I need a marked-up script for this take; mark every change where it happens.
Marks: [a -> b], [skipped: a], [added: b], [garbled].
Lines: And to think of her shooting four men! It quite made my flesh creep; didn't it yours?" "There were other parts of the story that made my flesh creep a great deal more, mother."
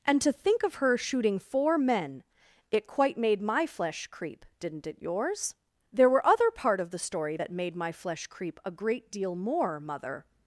And to think of her shooting four men! It quite made my flesh creep; didn't it yours?" "There were other [parts -> part] of the story that made my flesh creep a great deal more, mother."